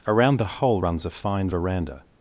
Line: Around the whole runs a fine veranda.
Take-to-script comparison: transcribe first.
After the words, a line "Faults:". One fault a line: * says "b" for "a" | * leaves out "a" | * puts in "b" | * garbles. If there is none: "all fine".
Around the whole runs a fine veranda.
Faults:
all fine